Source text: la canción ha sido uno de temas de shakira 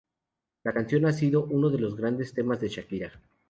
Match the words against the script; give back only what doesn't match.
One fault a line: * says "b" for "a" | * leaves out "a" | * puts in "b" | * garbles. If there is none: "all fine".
* puts in "los grandes"